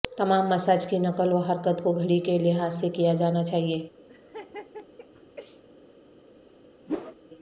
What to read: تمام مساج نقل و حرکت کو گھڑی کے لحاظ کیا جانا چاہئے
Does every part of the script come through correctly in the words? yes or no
no